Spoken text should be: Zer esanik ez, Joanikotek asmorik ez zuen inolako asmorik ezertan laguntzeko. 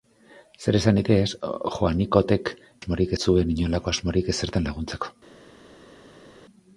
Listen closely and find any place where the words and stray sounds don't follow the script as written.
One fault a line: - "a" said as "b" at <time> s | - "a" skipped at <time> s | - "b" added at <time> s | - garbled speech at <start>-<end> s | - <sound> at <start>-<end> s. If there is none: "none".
none